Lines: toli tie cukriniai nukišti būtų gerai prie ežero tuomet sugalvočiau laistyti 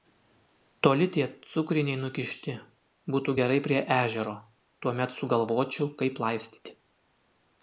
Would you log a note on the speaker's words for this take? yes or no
yes